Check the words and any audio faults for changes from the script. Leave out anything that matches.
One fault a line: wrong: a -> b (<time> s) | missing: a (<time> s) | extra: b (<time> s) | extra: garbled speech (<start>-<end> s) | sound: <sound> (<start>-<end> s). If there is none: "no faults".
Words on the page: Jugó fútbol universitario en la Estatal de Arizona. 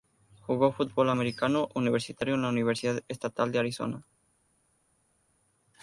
extra: americano (1.1 s)
extra: Universidad (2.5 s)